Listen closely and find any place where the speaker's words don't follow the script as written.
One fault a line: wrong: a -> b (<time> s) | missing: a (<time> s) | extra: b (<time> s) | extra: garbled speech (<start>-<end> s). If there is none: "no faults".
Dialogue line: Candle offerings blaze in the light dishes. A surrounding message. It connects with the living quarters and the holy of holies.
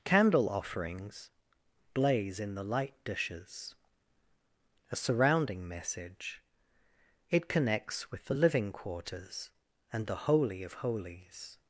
no faults